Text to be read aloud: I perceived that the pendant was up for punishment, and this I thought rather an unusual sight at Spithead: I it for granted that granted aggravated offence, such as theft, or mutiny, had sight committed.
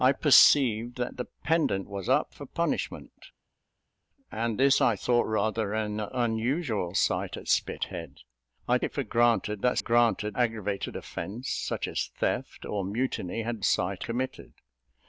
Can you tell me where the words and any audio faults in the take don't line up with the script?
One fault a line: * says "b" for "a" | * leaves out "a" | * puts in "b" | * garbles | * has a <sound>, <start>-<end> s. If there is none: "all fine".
all fine